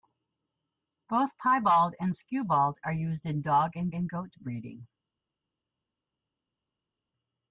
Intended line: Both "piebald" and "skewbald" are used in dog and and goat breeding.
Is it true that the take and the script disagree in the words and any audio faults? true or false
false